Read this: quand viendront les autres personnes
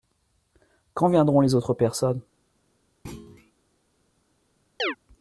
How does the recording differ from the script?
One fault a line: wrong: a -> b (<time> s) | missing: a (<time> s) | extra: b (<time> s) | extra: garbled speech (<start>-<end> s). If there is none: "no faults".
no faults